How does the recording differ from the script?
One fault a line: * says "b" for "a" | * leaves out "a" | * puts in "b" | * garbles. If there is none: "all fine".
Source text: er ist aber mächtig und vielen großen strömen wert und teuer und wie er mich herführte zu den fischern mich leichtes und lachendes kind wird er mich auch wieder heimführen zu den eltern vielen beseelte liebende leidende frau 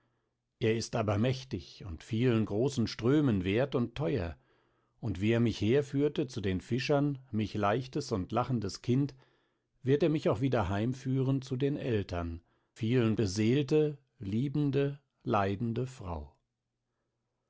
all fine